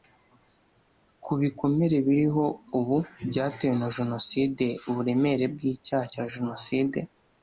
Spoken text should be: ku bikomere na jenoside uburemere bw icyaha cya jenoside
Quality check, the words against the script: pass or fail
fail